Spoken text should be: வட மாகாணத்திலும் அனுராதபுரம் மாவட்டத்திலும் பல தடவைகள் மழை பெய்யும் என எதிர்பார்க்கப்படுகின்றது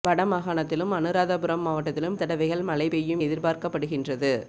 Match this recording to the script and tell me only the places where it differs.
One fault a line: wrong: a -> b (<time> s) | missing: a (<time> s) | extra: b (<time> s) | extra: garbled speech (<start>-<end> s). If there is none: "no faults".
missing: பல (2.2 s)
missing: என (3.2 s)